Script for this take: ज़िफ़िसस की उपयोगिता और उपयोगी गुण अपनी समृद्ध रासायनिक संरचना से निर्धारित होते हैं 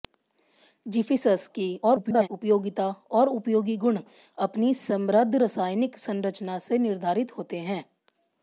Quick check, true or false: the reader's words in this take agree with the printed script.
false